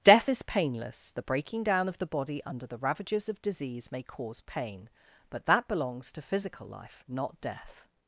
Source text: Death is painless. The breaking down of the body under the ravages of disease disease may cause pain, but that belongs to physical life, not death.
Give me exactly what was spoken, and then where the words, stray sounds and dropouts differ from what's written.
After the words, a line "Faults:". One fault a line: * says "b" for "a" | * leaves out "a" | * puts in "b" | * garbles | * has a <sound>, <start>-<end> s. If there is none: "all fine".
Death is painless. The breaking down of the body under the ravages of disease may cause pain, but that belongs to physical life, not death.
Faults:
* leaves out "disease"